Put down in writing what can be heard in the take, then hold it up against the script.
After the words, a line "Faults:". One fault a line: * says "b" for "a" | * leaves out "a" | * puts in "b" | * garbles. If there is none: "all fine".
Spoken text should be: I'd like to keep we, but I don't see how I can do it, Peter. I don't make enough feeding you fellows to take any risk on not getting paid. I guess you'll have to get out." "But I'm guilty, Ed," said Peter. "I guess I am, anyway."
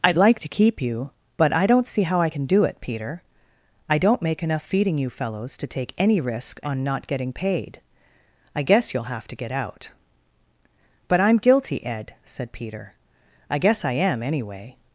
I'd like to keep you, but I don't see how I can do it, Peter. I don't make enough feeding you fellows to take any risk on not getting paid. I guess you'll have to get out." "But I'm guilty, Ed," said Peter. "I guess I am, anyway."
Faults:
* says "you" for "we"